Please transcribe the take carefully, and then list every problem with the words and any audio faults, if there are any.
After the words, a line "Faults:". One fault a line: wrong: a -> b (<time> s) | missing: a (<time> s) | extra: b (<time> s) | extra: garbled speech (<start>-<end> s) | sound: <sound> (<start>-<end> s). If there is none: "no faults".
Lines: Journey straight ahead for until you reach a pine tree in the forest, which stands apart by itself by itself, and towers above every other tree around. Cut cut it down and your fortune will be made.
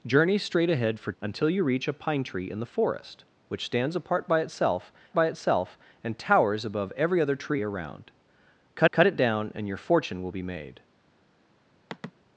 Journey straight ahead for until you reach a pine tree in the forest, which stands apart by itself by itself, and towers above every other tree around. Cut cut it down and your fortune will be made.
Faults:
sound: sigh (11.9-12.1 s)